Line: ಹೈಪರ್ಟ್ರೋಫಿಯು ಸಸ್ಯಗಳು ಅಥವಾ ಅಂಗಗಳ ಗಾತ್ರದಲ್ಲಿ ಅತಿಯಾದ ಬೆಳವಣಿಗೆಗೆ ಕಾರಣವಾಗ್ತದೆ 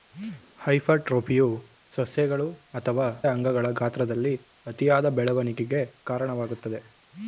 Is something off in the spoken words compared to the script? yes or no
no